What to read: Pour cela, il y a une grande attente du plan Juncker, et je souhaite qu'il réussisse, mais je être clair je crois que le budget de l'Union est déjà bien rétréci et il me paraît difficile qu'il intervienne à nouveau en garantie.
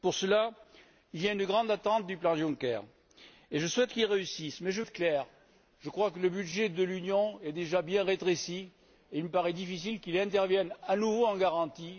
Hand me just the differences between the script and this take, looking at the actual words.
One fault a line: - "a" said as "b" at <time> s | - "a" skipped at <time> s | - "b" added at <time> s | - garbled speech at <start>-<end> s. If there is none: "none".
none